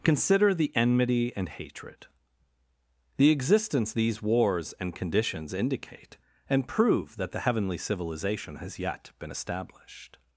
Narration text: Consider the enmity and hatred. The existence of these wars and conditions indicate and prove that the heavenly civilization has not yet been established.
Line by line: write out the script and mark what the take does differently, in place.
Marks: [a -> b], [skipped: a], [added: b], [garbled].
Consider the enmity and hatred. The existence [skipped: of] these wars and conditions indicate and prove that the heavenly civilization has [skipped: not] yet been established.